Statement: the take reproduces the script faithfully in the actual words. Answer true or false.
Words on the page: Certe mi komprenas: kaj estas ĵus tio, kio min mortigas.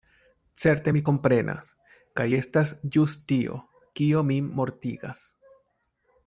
true